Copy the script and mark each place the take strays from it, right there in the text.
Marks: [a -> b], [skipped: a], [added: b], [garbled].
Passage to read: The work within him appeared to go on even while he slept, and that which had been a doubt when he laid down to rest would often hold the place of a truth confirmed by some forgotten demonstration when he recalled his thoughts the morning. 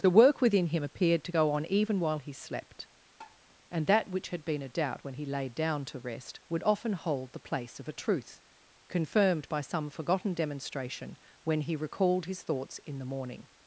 The work within him appeared to go on even while he slept, and that which had been a doubt when he laid down to rest would often hold the place of a truth confirmed by some forgotten demonstration when he recalled his thoughts [added: in] the morning.